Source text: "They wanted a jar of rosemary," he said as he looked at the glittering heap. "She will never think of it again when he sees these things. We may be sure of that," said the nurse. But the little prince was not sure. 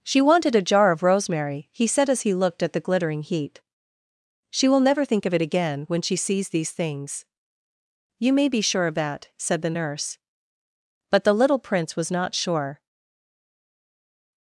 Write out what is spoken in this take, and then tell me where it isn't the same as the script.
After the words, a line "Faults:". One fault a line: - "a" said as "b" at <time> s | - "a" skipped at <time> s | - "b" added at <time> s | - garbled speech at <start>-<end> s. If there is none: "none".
"She wanted a jar of rosemary," he said as he looked at the glittering heap. "She will never think of it again when she sees these things. You may be sure of that," said the nurse. But the little prince was not sure.
Faults:
- "They" said as "She" at 0.0 s
- "he" said as "she" at 6.0 s
- "We" said as "You" at 8.2 s